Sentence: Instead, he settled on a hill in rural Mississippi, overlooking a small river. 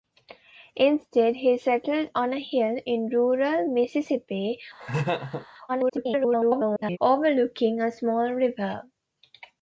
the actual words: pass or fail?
fail